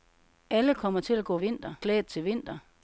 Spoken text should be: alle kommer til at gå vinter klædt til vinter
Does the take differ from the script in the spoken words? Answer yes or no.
no